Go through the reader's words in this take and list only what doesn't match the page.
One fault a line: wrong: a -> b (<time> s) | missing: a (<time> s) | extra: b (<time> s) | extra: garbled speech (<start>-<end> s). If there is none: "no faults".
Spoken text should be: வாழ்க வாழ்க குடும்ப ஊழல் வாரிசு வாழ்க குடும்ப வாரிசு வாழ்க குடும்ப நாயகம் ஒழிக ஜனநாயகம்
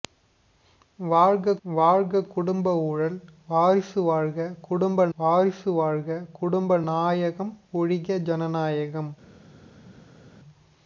no faults